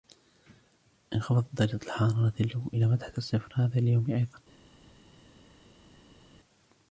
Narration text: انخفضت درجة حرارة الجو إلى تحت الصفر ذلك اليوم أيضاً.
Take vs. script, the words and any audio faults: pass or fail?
fail